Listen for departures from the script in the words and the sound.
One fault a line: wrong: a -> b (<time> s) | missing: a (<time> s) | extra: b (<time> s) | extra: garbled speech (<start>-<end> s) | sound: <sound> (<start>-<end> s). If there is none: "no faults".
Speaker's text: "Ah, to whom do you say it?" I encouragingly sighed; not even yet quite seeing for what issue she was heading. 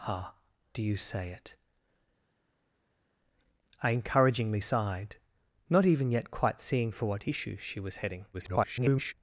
missing: to whom (0.3 s)
extra: garbled speech (8.3-9.1 s)